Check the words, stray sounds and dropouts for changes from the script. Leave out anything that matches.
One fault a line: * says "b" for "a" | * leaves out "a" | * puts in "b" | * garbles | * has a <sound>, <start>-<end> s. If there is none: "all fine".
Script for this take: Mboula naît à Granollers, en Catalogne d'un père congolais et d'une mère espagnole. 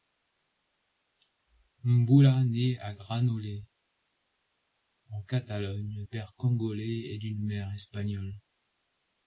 * leaves out "d'un"